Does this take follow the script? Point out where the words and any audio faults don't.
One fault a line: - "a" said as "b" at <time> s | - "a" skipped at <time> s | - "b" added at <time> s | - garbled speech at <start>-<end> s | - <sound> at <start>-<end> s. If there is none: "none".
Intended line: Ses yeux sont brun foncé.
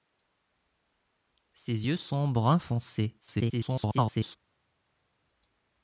- garbled speech at 3.2-4.4 s